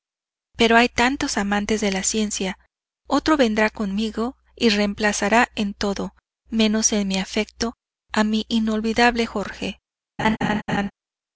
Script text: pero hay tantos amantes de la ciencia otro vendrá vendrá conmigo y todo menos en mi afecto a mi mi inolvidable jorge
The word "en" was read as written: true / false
true